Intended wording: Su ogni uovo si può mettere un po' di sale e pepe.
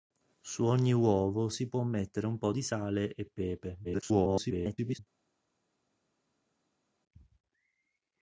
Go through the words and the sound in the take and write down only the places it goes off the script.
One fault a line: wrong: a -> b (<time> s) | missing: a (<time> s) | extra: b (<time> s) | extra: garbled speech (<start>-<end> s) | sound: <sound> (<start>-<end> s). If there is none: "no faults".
extra: garbled speech (3.8-5.0 s)